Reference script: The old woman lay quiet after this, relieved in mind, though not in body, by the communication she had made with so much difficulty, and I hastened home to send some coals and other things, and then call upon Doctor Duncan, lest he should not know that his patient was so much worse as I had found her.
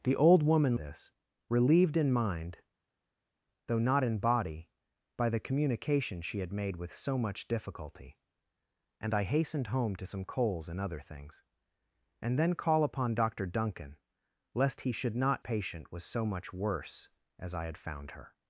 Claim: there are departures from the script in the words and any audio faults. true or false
true